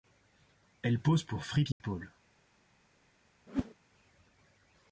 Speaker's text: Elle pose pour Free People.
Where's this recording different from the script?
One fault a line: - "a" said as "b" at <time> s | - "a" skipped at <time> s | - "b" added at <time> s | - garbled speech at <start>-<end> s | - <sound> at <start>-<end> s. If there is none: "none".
- dropout at 1.7-1.8 s
- whoosh at 3.5-3.7 s